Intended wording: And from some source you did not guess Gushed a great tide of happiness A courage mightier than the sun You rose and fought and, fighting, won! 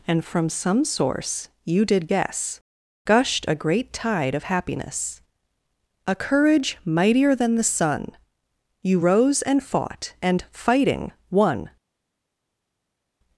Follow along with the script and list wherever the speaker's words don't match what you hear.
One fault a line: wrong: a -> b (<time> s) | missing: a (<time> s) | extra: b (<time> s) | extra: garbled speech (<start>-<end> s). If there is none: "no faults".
missing: not (2.1 s)